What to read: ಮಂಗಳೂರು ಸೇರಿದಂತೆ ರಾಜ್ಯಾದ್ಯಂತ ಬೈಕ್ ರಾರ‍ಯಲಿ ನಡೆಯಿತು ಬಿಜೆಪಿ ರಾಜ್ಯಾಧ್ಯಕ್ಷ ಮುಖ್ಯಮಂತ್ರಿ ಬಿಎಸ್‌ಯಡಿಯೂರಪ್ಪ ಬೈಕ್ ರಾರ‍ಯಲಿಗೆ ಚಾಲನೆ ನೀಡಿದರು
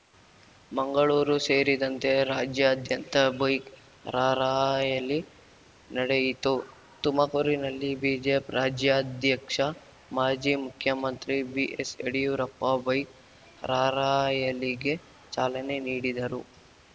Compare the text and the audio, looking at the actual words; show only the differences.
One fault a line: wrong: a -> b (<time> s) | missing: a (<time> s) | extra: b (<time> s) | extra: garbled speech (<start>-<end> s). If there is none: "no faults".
extra: ತುಮಕೂರಿನಲ್ಲಿ (7.0 s)
extra: ಮಾಜಿ (10.1 s)